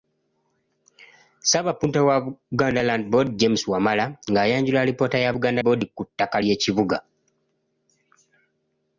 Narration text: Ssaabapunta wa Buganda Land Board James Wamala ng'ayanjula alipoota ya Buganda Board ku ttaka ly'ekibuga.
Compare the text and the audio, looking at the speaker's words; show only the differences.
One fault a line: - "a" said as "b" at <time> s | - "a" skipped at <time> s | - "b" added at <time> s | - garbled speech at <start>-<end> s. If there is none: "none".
none